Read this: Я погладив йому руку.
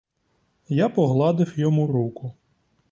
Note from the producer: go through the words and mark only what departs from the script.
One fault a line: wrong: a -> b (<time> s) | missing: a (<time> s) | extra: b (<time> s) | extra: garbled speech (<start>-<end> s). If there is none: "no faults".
no faults